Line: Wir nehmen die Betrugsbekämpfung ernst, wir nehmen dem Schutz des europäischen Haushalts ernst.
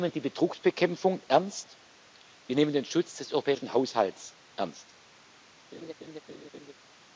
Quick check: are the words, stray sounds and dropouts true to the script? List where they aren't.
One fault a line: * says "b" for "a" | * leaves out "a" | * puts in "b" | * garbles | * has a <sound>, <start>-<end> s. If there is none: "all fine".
* says "den" for "dem"
* has a laugh, 5.7-6.7 s